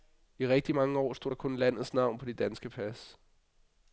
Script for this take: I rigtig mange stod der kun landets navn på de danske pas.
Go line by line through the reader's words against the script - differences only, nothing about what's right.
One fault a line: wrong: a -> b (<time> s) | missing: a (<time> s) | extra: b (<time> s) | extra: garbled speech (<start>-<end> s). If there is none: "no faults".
extra: år (1.0 s)